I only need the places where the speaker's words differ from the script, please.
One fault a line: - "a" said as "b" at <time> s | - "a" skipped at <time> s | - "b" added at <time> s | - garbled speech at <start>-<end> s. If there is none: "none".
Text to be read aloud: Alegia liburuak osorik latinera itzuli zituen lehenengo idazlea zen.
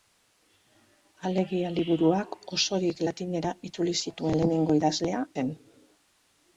none